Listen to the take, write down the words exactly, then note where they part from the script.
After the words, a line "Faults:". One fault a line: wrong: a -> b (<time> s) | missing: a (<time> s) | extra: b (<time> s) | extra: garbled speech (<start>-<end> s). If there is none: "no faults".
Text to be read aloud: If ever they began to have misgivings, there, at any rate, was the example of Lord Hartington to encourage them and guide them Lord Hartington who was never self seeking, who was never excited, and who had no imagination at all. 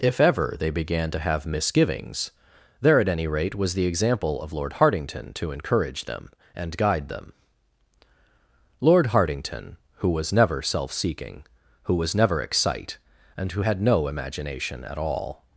If ever they began to have misgivings, there, at any rate, was the example of Lord Hartington to encourage them and guide them Lord Hartington who was never self seeking, who was never excite, and who had no imagination at all.
Faults:
wrong: excited -> excite (12.4 s)